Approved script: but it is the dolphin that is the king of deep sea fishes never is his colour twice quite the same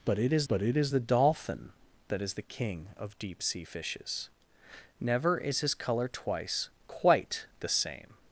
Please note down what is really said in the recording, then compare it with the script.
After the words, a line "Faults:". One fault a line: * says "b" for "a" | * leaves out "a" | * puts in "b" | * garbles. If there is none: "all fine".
but it is but it is the dolphin that is the king of deep sea fishes never is his colour twice quite the same
Faults:
* puts in "but it is"